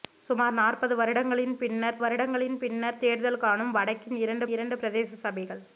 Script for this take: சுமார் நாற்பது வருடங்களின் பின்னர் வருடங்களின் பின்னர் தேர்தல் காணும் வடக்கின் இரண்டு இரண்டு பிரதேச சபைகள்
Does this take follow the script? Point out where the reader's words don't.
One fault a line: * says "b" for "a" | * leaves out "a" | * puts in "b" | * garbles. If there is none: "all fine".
all fine